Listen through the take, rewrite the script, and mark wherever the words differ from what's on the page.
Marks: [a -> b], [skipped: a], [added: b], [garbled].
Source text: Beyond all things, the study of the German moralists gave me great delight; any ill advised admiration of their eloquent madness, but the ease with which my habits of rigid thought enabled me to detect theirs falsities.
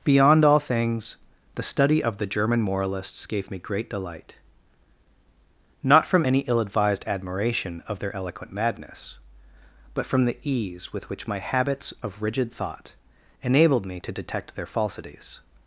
Beyond all things, the study of the German moralists gave me great delight; [added: not from] any ill advised admiration of their eloquent madness, but [added: from] the ease with which my habits of rigid thought enabled me to detect [theirs -> their] falsities.